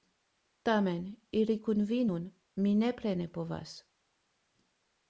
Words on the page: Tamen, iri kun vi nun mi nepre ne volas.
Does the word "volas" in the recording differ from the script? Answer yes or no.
yes